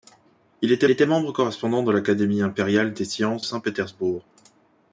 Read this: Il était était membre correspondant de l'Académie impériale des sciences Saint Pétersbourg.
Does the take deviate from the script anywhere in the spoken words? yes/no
no